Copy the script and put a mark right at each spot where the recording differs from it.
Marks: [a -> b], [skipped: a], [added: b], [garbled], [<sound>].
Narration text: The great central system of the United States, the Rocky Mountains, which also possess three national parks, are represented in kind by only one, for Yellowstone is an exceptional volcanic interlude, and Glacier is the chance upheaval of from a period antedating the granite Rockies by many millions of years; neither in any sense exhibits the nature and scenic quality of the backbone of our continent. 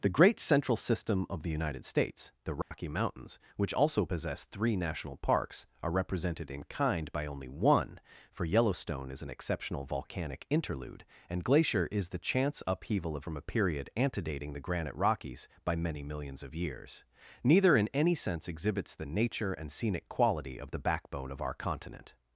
The great central system of the United States, the Rocky [dropout] Mountains, which also possess three national parks, are represented in kind by only one, for Yellowstone is an exceptional volcanic interlude, and Glacier is the chance upheaval of from a period antedating the granite Rockies by many millions of years; neither in any sense exhibits the nature and scenic quality of the backbone of our continent.